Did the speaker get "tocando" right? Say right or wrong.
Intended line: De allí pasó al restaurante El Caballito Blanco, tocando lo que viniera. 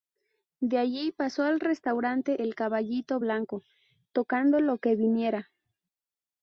right